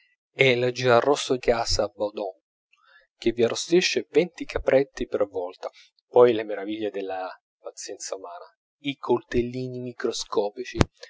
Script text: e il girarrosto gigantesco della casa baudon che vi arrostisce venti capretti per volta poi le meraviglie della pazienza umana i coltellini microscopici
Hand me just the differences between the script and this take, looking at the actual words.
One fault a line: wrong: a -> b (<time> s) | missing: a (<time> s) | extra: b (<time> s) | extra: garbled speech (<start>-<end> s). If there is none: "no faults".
missing: gigantesco della (1.4 s)